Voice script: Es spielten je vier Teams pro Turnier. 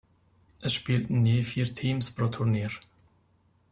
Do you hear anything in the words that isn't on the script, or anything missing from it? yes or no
no